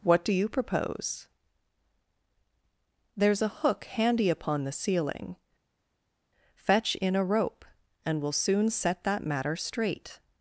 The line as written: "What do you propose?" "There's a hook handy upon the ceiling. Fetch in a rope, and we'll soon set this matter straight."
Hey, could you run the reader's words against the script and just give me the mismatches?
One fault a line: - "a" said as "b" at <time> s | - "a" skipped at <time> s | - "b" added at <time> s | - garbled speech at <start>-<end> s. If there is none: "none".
- "this" said as "that" at 9.0 s